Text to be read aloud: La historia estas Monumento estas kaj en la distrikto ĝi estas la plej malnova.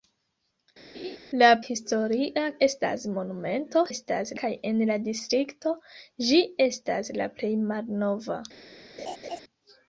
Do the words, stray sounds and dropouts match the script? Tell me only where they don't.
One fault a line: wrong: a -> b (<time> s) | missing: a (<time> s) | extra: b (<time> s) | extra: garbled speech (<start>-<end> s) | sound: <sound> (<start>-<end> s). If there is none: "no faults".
sound: laugh (0.9-1.2 s)
sound: laugh (9.0-9.4 s)